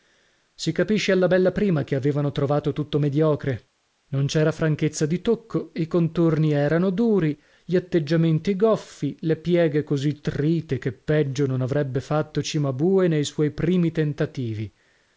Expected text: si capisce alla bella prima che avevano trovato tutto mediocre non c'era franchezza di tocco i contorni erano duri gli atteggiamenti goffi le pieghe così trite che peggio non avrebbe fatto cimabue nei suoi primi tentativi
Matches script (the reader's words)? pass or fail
pass